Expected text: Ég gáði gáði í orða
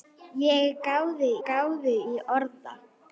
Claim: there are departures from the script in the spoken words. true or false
false